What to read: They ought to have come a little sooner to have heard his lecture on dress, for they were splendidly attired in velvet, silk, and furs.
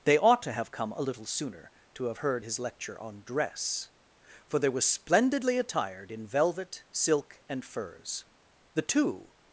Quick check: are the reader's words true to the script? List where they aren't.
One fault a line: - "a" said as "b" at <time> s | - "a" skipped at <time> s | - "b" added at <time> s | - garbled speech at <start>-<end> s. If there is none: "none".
- "The two" added at 8.7 s